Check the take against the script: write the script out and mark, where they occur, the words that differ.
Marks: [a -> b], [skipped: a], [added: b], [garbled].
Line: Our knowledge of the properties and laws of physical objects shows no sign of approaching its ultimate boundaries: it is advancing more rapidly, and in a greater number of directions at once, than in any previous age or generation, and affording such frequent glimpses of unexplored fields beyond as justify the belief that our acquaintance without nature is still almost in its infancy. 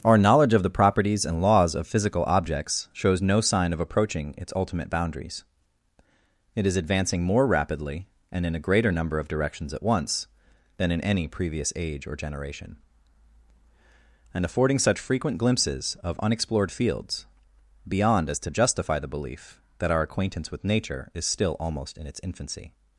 Our knowledge of the properties and laws of physical objects shows no sign of approaching its ultimate boundaries: it is advancing more rapidly, and in a greater number of directions at once, than in any previous age or generation, and affording such frequent glimpses of unexplored fields beyond as [added: to] justify the belief that our acquaintance [without -> with] nature is still almost in its infancy.